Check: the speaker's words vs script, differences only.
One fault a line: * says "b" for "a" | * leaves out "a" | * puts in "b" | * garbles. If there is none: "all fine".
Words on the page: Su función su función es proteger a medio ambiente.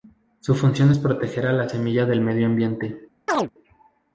* leaves out "su función"
* puts in "la semilla del"